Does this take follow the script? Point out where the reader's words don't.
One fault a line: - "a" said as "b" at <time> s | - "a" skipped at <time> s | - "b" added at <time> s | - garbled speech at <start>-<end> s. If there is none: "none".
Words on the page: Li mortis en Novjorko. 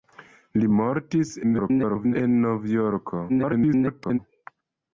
- garbled speech at 1.4-2.2 s
- garbled speech at 3.3-4.2 s